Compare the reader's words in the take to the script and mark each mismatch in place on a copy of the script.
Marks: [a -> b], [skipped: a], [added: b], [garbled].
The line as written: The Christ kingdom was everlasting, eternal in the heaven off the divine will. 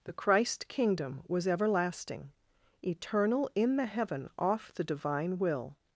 The Christ kingdom was everlasting, eternal in the heaven off the divine will.